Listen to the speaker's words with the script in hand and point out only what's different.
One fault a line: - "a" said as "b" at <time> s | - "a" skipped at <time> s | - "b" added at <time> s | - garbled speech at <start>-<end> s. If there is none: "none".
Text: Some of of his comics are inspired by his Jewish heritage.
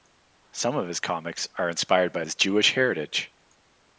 - "of" skipped at 0.9 s